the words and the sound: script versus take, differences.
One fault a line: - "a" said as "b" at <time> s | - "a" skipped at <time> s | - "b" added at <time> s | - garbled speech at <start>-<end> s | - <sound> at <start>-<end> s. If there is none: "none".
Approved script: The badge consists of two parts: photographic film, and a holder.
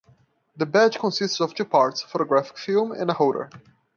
none